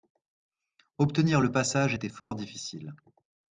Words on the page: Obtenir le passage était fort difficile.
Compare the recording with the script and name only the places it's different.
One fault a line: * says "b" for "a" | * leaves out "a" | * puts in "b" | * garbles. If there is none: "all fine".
all fine